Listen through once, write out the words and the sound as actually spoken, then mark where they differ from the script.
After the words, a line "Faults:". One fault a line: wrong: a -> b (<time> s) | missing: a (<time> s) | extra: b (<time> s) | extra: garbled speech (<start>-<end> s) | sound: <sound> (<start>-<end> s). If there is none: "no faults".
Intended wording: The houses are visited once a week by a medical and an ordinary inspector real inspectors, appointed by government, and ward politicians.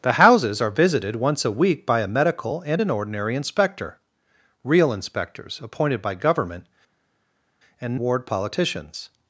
The houses are visited once a week by a medical and an ordinary inspector real inspectors, appointed by government, and ward politicians.
Faults:
no faults